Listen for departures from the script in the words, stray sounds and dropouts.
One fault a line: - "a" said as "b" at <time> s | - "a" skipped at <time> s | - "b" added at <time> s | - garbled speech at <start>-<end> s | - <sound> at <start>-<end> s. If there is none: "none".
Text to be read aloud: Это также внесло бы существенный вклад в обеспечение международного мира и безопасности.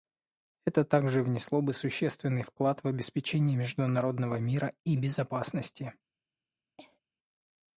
- cough at 6.8-7.0 s